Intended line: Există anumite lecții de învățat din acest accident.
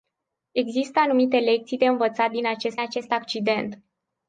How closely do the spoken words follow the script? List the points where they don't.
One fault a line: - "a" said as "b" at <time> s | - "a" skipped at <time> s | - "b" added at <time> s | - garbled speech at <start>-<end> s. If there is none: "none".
- "acest" added at 2.8 s